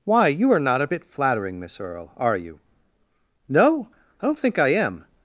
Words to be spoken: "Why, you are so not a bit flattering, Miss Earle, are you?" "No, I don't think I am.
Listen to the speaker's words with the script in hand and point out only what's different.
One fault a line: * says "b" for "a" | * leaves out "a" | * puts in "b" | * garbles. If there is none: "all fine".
* leaves out "so"